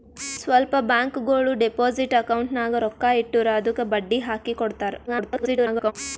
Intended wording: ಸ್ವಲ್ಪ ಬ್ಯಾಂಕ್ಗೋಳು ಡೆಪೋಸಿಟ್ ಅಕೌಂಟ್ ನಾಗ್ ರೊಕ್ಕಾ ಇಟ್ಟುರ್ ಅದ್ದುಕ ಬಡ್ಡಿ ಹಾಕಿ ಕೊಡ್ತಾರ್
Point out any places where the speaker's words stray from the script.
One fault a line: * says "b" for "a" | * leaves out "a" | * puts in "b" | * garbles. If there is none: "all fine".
* garbles